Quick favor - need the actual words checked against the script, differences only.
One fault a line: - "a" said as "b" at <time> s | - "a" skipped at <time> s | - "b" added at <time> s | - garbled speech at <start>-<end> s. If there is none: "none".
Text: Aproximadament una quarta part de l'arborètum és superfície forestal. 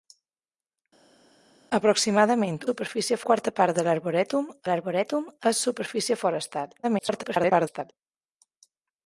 - "una" said as "superfície" at 2.7 s
- "l'arborètum" added at 4.7 s
- garbled speech at 6.8-7.9 s